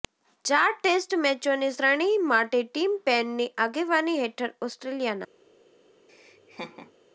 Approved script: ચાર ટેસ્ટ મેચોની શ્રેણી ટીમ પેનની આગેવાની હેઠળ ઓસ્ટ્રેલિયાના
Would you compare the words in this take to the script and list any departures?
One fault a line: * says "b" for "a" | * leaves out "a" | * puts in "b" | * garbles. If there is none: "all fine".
* puts in "માટે"